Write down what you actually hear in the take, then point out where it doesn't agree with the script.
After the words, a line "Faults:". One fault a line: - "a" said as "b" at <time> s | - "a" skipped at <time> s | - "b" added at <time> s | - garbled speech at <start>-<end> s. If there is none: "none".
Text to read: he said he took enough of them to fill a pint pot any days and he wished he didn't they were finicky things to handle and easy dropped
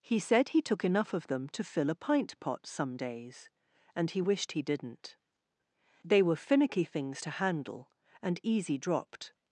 he said he took enough of them to fill a pint pot some days and he wished he didn't they were finicky things to handle and easy dropped
Faults:
- "any" said as "some" at 2.6 s